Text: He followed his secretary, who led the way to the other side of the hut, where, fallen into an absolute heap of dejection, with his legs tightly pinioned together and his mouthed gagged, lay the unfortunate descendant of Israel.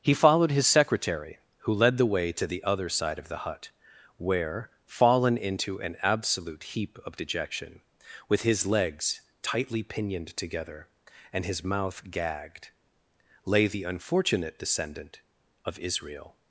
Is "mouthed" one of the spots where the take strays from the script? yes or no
yes